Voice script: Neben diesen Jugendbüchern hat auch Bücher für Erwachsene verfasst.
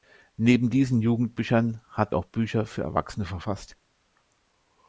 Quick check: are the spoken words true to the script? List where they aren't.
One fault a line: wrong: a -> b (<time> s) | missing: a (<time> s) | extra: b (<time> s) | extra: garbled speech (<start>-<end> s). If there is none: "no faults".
no faults